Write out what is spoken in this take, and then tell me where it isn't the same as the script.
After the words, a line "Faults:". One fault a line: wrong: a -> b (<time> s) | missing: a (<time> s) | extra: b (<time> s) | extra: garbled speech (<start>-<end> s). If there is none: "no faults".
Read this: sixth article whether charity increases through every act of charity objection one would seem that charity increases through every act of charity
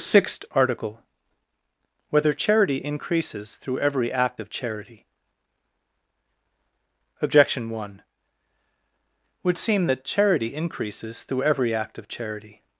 sixth article whether charity increases through every act of charity objection one would seem that charity increases through every act of charity
Faults:
no faults